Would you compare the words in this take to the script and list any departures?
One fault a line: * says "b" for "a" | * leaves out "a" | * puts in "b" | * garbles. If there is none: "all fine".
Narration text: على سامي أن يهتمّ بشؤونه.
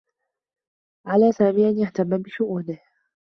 all fine